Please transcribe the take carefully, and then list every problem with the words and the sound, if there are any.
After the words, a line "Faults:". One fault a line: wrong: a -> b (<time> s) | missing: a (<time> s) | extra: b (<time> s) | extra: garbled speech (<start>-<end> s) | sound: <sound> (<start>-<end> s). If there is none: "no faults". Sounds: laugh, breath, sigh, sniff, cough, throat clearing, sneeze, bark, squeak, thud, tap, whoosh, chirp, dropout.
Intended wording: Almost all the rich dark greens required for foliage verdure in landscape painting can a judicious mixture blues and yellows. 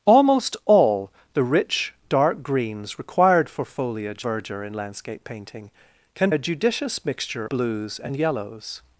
Almost all the rich dark greens required for foliage verdure in landscape painting can a judicious mixture blues and yellows.
Faults:
no faults